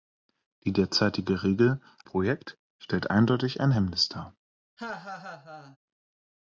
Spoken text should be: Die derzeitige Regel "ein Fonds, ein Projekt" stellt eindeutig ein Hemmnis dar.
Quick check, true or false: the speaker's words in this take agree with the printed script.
false